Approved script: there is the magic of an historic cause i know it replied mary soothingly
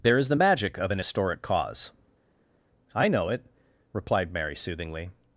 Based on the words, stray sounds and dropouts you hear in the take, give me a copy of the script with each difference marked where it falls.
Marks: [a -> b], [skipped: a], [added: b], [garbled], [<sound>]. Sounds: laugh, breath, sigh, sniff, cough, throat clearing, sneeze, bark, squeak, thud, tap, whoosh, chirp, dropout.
there is the magic of an historic cause i know it replied mary soothingly